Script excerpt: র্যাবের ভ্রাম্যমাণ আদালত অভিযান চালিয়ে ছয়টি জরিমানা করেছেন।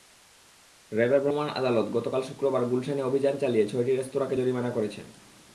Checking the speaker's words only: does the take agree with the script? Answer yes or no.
no